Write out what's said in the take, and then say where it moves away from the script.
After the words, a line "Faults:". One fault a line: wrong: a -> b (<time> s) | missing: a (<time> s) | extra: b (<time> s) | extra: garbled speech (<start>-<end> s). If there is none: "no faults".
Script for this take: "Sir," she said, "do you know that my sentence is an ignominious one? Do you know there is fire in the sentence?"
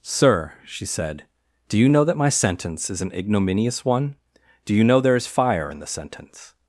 "Sir," she said, "do you know that my sentence is an ignominious one? Do you know there is fire in the sentence?"
Faults:
no faults